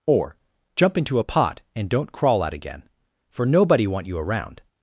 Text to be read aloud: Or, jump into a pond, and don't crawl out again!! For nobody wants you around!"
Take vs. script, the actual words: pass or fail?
fail